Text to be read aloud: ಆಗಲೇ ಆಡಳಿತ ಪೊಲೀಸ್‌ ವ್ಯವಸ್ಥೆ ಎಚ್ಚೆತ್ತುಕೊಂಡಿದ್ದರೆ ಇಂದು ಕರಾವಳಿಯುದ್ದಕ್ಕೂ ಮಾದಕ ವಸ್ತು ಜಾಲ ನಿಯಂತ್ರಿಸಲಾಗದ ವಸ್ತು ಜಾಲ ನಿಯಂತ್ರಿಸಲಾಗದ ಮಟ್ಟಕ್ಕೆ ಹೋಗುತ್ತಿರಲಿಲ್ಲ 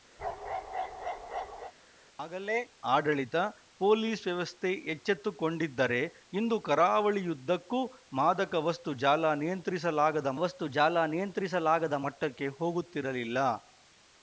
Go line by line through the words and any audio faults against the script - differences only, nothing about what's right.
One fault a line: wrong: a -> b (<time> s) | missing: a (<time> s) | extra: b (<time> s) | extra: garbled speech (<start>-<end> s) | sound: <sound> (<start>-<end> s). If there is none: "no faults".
sound: bark (0.2-1.7 s)